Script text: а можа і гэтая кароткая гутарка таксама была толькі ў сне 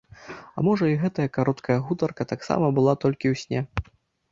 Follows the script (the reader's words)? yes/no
yes